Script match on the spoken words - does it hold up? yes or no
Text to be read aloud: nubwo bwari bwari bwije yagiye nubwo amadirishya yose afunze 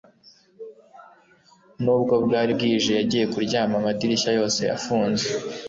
no